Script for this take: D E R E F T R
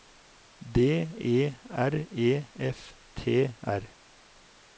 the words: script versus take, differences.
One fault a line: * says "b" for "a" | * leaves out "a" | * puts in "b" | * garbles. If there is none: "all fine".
all fine